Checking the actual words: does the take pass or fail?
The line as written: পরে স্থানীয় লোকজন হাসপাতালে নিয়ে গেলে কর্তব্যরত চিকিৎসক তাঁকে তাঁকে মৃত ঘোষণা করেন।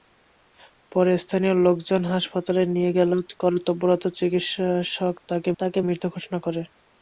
pass